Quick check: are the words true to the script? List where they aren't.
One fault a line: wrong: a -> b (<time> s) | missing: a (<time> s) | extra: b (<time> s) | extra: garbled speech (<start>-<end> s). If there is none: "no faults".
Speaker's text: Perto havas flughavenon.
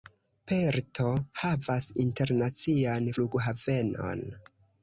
extra: internacian (2.0 s)